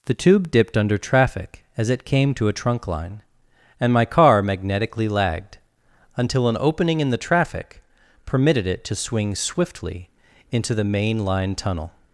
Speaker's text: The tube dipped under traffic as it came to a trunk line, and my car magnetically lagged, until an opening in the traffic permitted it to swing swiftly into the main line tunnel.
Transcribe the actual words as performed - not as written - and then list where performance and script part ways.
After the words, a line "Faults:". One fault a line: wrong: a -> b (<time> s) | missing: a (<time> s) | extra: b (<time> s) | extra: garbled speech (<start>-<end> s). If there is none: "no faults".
The tube dipped under traffic as it came to a trunk line, and my car magnetically lagged, until an opening in the traffic permitted it to swing swiftly into the main line tunnel.
Faults:
no faults